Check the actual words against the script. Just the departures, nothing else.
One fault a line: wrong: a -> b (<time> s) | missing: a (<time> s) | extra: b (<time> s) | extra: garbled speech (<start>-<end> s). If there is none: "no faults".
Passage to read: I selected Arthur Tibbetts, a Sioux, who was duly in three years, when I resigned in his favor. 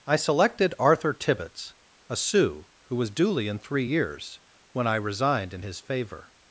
no faults